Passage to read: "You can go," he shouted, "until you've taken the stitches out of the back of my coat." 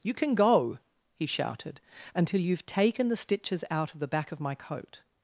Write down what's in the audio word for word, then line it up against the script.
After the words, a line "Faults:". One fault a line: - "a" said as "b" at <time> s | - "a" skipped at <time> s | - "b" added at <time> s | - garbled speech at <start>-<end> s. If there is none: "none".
"You can go," he shouted, "until you've taken the stitches out of the back of my coat."
Faults:
none